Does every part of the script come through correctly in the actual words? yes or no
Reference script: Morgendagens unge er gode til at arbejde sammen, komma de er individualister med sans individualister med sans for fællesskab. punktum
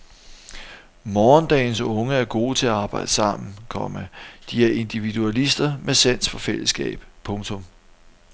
no